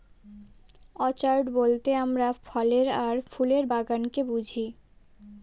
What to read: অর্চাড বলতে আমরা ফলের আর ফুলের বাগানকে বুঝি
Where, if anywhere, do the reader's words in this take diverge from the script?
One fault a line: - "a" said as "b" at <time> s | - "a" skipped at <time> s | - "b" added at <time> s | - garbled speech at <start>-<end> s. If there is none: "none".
none